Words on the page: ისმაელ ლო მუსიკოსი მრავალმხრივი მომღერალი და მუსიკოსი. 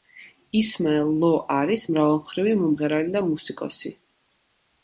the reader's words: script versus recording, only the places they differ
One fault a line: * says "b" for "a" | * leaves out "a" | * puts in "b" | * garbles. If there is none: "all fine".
* says "არის" for "მუსიკოსი"